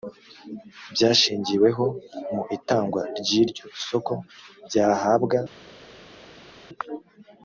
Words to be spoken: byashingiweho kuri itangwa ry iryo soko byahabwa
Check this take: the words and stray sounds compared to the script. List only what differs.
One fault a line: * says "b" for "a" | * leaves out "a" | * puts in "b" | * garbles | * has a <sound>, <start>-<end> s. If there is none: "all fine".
* says "mu" for "kuri"